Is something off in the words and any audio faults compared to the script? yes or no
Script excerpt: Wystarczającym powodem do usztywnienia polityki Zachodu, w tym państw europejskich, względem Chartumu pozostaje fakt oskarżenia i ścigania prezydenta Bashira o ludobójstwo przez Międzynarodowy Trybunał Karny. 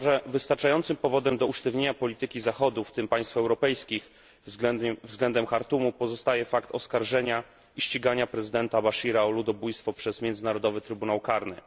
no